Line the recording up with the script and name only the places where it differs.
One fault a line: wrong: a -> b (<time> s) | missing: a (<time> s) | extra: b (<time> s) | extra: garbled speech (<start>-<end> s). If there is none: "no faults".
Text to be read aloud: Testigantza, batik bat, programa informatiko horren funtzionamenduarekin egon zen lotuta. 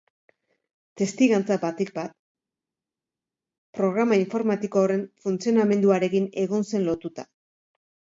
no faults